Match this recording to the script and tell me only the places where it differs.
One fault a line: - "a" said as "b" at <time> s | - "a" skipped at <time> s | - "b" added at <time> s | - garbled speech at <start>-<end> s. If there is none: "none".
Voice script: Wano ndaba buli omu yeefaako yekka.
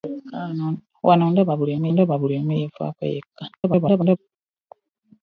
- "ndaba buli omu" added at 1.9 s
- garbled speech at 3.5-4.2 s